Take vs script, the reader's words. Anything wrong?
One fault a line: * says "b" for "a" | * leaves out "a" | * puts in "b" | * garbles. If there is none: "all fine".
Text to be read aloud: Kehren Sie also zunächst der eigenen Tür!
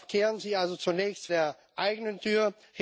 all fine